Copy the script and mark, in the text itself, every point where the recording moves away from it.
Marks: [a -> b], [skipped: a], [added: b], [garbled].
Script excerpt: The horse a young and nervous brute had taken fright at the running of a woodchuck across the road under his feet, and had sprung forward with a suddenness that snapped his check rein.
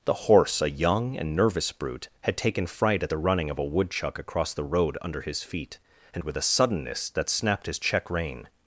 The horse a young and nervous brute had taken fright at the running of a woodchuck across the road under his feet, and [skipped: had sprung forward] with a suddenness that snapped his check rein.